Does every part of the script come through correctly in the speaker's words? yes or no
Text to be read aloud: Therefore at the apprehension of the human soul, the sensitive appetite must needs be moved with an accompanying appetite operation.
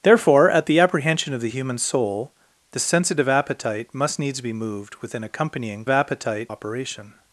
yes